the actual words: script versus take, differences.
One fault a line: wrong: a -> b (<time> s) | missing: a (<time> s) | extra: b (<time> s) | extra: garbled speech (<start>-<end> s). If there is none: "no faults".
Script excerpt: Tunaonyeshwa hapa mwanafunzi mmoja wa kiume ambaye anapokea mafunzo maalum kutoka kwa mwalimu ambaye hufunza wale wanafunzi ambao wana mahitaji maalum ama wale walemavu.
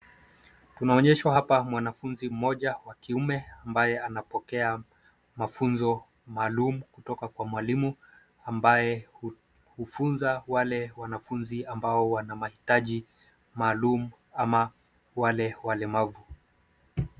no faults